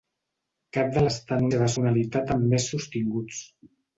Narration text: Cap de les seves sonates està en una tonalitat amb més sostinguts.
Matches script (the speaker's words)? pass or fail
fail